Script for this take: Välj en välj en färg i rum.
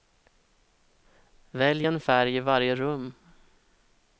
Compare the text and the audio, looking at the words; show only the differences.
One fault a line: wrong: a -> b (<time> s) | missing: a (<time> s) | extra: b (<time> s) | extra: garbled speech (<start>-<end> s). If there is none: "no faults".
missing: välj en (2.0 s)
extra: varje (2.4 s)